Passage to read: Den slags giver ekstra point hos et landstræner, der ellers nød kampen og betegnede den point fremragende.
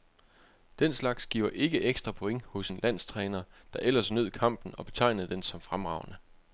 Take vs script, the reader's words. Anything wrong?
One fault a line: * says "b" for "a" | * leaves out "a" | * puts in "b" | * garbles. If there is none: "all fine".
* puts in "ikke"
* says "en" for "et"
* says "som" for "point"